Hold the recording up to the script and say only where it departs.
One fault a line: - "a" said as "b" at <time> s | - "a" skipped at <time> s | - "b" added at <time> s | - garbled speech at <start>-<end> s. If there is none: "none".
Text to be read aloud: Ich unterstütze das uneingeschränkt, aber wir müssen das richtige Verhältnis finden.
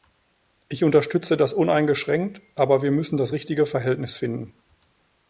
none